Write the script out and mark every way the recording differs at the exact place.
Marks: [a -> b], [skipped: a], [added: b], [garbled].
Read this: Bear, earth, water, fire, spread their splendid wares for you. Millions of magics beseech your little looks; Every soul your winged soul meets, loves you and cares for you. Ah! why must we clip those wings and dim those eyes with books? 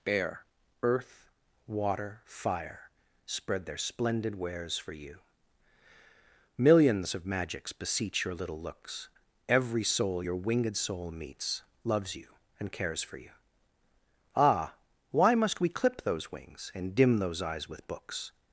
Bear, earth, water, fire, spread their splendid wares for you. Millions of magics beseech your little looks; Every soul your winged soul meets, loves you and cares for you. Ah! why must we clip those wings and dim those eyes with books?